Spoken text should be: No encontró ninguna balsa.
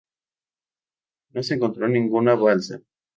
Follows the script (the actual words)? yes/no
no